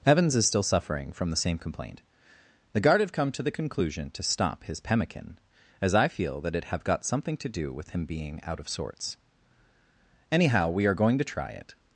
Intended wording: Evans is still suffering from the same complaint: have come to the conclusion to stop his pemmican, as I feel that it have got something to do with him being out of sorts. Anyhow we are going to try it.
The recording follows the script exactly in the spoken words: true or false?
false